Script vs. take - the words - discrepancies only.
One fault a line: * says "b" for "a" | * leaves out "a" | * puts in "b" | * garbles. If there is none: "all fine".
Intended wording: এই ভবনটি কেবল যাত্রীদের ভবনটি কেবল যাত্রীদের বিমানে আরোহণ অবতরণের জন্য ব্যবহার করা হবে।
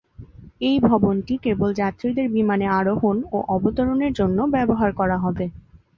* leaves out "ভবনটি কেবল যাত্রীদের"
* puts in "ও"